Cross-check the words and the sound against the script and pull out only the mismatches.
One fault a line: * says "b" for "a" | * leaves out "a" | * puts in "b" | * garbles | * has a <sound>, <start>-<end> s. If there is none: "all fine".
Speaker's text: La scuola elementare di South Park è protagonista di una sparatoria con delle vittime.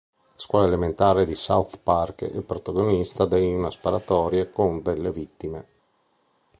all fine